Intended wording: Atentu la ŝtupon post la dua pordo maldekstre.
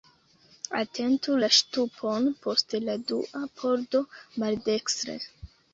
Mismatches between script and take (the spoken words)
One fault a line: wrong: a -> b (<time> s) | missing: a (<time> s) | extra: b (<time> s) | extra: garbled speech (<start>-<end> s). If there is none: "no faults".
no faults